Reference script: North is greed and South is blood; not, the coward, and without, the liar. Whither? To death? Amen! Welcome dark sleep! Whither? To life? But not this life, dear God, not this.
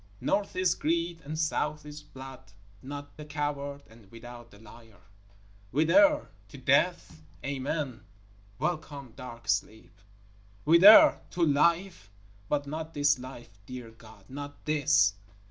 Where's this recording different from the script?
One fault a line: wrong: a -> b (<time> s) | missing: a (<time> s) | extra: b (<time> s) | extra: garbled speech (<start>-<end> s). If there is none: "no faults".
no faults